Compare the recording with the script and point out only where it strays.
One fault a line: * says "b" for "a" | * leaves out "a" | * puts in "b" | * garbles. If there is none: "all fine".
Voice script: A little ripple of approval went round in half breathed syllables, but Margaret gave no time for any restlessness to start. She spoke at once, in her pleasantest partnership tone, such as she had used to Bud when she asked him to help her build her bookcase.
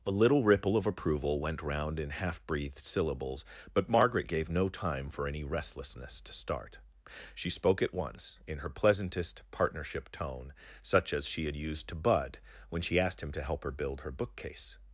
all fine